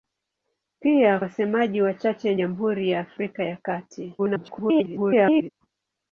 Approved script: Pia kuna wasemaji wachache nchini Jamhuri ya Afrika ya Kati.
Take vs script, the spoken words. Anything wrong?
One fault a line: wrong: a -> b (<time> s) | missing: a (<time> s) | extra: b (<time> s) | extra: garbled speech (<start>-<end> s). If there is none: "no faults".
missing: kuna (1.2 s)
missing: nchini (2.3 s)
extra: garbled speech (4.2-5.5 s)